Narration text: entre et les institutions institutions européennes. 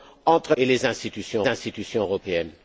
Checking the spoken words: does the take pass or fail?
pass